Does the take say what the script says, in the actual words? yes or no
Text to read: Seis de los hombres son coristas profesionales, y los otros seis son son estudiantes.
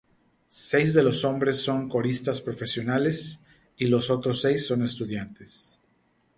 no